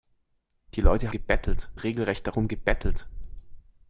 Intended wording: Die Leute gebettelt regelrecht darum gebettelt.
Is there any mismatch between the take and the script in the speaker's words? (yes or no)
no